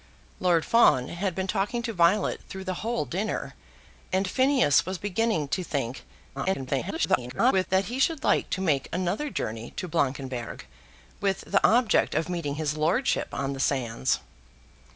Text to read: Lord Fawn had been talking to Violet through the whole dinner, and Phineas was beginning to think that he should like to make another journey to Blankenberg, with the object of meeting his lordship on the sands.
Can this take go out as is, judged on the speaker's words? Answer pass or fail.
fail